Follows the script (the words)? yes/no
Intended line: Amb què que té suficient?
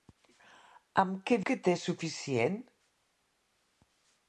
yes